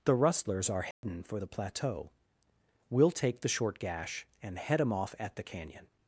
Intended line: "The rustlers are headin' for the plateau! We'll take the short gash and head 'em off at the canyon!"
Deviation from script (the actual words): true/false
false